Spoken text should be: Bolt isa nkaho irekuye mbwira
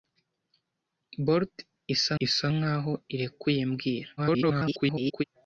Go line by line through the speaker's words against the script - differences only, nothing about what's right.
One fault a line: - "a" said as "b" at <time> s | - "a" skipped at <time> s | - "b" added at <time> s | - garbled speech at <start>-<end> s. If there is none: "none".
- "isa" added at 2.2 s
- garbled speech at 4.2-5.2 s